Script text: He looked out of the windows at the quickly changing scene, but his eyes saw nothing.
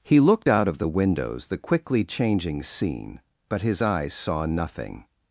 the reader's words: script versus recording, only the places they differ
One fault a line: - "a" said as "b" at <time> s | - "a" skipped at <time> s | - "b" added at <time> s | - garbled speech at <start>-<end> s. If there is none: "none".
- "at" skipped at 1.5 s